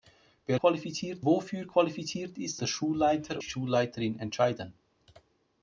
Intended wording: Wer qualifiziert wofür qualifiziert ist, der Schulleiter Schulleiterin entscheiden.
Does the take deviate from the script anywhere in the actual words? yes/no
no